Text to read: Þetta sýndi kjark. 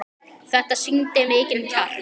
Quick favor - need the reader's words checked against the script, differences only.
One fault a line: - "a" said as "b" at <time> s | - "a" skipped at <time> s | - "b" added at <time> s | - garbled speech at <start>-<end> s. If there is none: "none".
- "mikinn" added at 1.3 s